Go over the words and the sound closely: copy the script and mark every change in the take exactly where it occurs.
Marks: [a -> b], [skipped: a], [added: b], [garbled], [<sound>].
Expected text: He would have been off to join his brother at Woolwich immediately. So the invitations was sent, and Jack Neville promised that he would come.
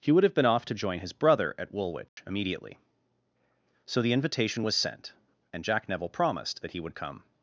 He would have been off to join his brother at Woolwich [dropout] immediately. So the [invitations -> invitation] was sent, and Jack Neville promised that he would come.